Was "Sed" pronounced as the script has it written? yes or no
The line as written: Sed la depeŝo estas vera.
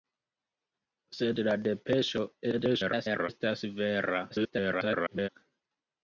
yes